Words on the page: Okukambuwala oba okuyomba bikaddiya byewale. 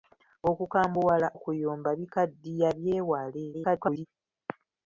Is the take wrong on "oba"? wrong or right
wrong